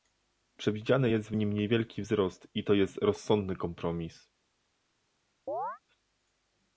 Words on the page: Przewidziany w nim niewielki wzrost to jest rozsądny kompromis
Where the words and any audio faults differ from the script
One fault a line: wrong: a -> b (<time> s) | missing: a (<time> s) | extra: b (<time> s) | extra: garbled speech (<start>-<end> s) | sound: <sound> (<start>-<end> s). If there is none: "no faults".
extra: jest (1.1 s)
extra: i (2.5 s)
sound: chirp (5.5-5.8 s)